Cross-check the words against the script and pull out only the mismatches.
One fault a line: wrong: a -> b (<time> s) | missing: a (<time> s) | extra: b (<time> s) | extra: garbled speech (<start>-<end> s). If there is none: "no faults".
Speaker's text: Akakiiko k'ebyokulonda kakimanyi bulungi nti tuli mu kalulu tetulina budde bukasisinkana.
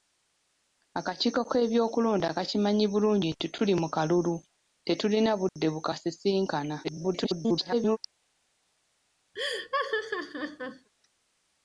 extra: garbled speech (6.8-8.0 s)